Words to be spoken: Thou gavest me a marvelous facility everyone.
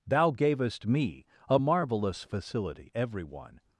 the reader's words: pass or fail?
pass